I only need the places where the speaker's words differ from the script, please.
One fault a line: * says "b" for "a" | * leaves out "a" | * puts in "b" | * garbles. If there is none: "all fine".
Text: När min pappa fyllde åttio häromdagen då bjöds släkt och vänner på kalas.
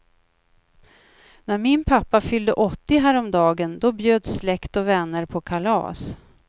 all fine